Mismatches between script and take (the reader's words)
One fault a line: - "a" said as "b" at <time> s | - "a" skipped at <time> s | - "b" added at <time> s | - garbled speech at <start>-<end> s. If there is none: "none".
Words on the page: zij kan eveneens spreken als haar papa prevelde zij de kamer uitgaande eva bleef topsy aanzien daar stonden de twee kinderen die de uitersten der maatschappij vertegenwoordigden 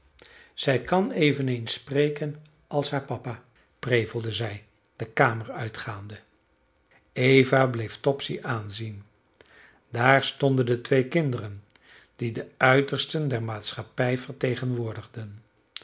none